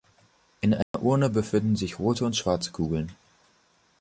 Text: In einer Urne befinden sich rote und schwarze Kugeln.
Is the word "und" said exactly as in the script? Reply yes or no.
yes